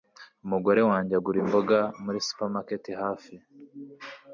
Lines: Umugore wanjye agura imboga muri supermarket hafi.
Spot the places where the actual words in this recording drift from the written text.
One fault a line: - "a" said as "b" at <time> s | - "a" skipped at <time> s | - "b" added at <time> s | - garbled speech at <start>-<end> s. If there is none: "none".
none